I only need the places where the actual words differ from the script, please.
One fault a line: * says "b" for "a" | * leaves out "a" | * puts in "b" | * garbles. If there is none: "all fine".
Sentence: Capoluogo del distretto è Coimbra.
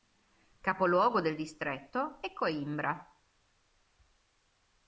all fine